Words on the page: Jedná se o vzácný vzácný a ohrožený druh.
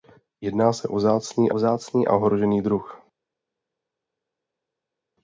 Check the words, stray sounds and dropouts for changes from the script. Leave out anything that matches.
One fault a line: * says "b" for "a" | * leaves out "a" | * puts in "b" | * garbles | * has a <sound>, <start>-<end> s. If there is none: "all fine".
all fine